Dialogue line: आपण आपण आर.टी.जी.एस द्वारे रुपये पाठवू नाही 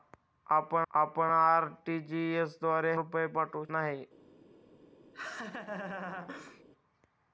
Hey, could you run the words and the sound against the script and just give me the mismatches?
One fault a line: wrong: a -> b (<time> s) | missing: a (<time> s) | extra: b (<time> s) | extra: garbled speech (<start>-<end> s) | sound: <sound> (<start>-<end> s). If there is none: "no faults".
sound: laugh (5.1-6.6 s)